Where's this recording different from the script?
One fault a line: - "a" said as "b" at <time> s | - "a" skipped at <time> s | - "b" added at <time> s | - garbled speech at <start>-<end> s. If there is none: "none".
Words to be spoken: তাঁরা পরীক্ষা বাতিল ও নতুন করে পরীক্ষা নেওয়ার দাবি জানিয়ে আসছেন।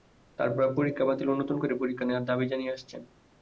none